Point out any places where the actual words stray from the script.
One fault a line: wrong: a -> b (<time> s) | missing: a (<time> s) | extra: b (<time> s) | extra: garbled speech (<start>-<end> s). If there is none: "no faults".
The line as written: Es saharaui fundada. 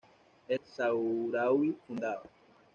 no faults